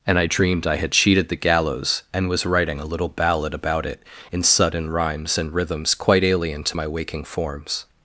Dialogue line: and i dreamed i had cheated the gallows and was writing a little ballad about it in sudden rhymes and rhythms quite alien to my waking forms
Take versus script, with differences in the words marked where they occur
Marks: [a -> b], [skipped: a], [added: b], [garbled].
and i dreamed i had cheated the gallows and was writing a little ballad about it in sudden rhymes and rhythms quite alien to my waking forms